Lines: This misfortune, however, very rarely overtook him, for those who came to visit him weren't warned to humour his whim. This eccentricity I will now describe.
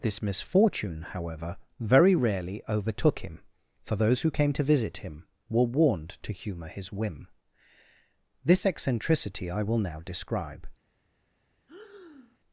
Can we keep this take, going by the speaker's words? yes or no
no